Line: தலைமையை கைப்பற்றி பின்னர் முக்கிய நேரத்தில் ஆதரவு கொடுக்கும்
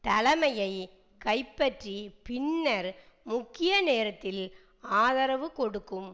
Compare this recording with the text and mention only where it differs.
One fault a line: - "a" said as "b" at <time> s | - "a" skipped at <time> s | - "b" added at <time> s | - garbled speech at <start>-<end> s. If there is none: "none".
none